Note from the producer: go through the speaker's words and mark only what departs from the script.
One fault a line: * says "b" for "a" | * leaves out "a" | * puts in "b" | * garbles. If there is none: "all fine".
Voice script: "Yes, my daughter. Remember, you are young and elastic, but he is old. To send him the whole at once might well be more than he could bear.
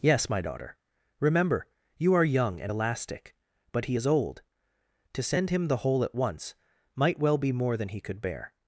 all fine